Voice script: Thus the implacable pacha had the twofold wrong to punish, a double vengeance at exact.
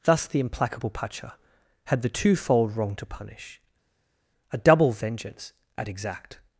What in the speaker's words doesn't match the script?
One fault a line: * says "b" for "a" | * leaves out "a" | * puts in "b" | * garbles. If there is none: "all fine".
all fine